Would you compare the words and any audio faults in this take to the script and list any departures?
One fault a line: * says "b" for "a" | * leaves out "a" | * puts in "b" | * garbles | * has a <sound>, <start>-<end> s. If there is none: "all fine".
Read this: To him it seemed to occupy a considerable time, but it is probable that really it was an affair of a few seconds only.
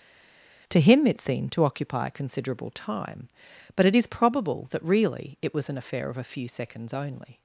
all fine